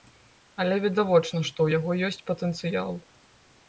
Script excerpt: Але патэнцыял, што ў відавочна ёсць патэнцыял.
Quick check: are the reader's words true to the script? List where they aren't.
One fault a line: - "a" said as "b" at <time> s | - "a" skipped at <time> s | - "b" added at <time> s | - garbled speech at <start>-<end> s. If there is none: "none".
- "патэнцыял" said as "відавочна" at 0.8 s
- "відавочна" said as "яго" at 1.8 s